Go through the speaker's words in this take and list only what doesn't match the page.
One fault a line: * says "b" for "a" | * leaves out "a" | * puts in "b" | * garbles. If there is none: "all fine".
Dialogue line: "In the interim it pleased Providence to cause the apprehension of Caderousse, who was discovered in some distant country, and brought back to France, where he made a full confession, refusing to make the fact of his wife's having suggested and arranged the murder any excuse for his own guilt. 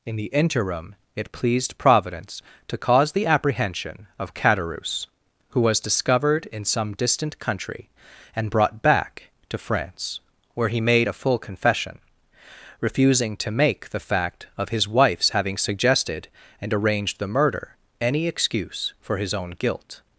all fine